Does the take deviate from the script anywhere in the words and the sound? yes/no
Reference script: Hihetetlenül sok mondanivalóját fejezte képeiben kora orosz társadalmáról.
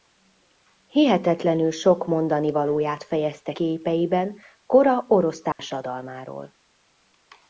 yes